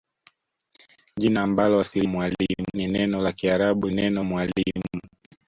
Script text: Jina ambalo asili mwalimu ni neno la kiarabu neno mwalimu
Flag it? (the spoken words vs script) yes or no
no